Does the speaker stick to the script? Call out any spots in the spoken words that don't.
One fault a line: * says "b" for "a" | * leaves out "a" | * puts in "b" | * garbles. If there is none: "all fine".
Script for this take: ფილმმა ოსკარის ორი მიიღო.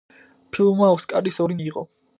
all fine